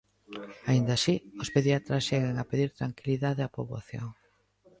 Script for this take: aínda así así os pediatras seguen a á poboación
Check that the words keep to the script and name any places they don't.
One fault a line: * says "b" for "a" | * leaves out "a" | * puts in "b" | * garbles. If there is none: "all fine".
* leaves out "así"
* puts in "pedir tranquilidade"